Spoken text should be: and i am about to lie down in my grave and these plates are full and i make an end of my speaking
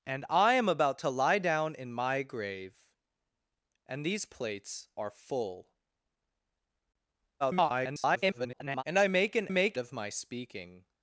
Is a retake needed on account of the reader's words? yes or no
yes